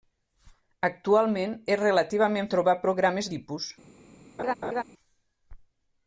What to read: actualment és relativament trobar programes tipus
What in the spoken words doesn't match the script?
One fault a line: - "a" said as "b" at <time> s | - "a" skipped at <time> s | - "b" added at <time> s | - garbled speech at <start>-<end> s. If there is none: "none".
none